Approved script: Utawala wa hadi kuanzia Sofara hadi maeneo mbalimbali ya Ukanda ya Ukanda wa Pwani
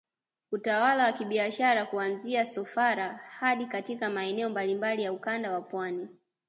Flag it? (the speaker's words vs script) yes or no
yes